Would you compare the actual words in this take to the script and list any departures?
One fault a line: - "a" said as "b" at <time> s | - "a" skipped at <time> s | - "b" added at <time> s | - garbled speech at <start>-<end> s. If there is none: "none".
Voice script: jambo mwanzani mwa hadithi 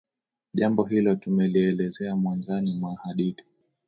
- "hilo tumelielezea" added at 0.8 s